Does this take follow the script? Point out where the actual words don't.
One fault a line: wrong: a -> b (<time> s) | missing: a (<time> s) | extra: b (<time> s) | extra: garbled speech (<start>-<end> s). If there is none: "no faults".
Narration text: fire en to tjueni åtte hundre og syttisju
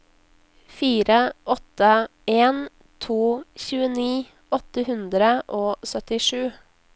extra: åtte (1.4 s)